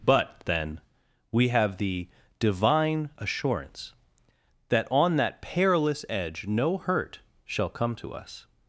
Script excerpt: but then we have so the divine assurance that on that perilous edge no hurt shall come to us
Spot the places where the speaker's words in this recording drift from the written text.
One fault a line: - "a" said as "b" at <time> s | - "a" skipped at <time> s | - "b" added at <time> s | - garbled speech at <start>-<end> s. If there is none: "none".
- "so" skipped at 1.8 s